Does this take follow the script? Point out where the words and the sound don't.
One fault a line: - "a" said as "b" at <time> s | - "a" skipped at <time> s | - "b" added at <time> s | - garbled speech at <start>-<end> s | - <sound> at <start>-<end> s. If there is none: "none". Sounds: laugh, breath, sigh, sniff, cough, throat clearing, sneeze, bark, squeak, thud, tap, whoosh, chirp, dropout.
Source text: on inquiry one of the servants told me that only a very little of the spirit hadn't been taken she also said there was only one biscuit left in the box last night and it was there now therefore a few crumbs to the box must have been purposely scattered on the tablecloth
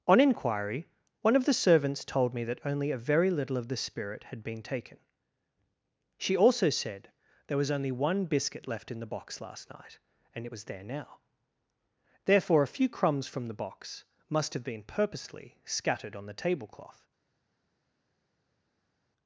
- "hadn't" said as "had" at 4.2 s
- "to" said as "from" at 13.3 s